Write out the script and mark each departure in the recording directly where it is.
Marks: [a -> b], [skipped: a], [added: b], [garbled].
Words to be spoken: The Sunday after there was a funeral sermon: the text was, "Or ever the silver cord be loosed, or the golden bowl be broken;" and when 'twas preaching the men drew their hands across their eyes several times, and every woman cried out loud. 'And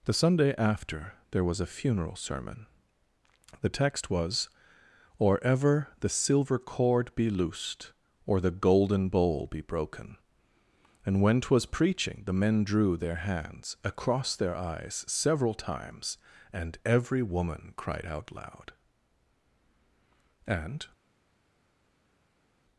The Sunday after there was a funeral sermon: the text was, "Or ever the silver cord be loosed, or the golden bowl be broken;" and when 'twas preaching the men drew their hands across their eyes several times, and every woman cried out loud. 'And